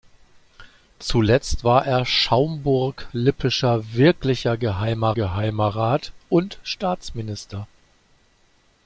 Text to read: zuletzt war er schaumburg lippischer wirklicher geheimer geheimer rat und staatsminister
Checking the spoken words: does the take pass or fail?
pass